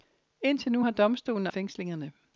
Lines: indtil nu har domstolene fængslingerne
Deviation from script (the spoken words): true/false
false